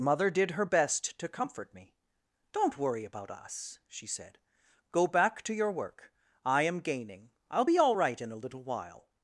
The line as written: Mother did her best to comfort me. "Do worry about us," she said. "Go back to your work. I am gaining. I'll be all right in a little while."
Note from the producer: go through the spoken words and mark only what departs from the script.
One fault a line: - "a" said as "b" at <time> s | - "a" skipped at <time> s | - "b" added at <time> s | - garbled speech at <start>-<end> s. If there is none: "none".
- "Do" said as "Don't" at 2.5 s